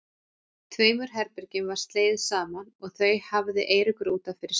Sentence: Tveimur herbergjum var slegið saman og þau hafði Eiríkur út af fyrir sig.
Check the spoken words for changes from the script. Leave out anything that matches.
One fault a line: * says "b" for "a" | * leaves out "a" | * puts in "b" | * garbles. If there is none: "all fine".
all fine